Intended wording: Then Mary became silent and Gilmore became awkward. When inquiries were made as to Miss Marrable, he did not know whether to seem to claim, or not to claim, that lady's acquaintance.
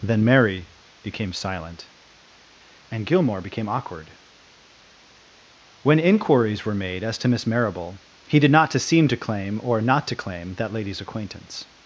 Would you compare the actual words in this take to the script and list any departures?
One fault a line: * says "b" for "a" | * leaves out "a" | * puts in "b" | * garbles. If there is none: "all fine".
* leaves out "know whether"